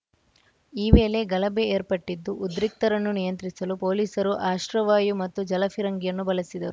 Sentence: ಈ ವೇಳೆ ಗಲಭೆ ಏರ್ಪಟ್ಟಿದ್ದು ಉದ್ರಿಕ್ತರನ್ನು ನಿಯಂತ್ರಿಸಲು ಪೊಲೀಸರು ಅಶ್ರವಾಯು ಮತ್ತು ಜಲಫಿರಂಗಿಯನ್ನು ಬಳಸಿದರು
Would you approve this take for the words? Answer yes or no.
yes